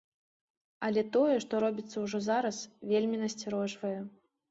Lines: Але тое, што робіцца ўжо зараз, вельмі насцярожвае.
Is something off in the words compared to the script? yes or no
no